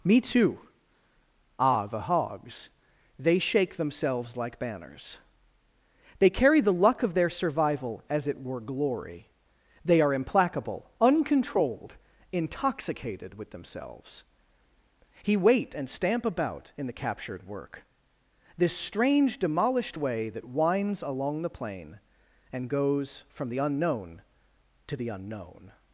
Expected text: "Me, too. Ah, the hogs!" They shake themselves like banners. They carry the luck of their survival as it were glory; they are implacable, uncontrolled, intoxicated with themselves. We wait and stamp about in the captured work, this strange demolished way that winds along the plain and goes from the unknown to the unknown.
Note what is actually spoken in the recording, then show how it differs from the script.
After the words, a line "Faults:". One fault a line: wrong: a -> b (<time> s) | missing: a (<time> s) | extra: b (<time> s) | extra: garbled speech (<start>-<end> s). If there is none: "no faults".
"Me, too. Ah, the hogs!" They shake themselves like banners. They carry the luck of their survival as it were glory; they are implacable, uncontrolled, intoxicated with themselves. He wait and stamp about in the captured work, this strange demolished way that winds along the plain and goes from the unknown to the unknown.
Faults:
wrong: We -> He (15.2 s)